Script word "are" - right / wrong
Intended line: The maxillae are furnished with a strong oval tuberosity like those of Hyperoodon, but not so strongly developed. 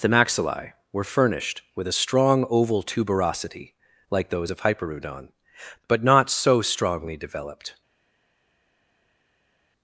wrong